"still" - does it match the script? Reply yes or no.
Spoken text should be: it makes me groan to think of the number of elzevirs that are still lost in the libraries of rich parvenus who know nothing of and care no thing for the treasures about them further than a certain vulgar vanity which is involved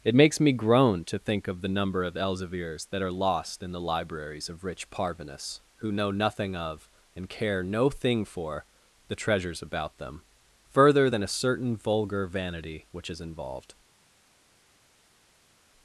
no